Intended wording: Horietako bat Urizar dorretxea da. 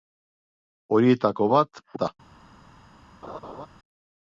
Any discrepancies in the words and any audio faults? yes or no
yes